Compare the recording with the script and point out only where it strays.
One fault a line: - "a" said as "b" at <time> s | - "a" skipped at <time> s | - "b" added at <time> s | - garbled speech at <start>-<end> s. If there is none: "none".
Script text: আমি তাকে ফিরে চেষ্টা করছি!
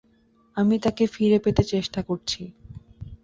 - "পেতে" added at 1.4 s